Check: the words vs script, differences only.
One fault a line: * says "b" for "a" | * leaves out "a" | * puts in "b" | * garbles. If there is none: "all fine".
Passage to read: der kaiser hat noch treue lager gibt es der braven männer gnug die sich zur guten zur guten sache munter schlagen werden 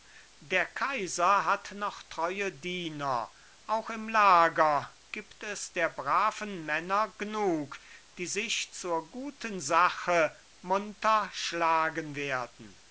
* puts in "diener auch im"
* leaves out "zur guten"